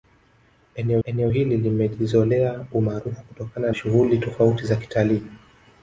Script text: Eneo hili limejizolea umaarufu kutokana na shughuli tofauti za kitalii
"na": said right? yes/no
no